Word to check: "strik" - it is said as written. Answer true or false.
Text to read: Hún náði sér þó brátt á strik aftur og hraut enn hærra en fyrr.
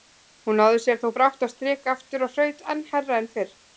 true